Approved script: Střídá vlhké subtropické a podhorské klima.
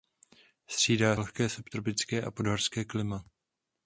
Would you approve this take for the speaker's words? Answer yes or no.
yes